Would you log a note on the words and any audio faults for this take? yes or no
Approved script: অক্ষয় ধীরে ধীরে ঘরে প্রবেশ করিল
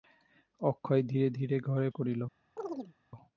yes